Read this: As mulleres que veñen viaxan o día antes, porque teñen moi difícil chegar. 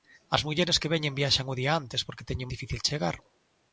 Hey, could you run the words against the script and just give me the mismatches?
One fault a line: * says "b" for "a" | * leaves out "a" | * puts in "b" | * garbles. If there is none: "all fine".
* leaves out "moi"